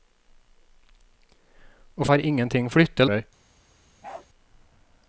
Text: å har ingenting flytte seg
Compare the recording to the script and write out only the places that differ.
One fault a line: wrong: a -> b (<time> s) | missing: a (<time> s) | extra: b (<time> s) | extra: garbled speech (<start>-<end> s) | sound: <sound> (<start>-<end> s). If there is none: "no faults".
sound: bark (4.0-4.3 s)